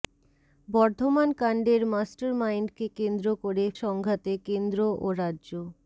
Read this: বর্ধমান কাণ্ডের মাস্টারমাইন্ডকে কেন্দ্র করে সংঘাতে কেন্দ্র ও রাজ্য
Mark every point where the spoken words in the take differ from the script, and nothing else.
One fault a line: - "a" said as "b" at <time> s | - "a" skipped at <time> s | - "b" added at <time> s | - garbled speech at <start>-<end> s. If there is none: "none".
none